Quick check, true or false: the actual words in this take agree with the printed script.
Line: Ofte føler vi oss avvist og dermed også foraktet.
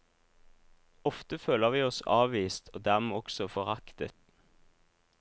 true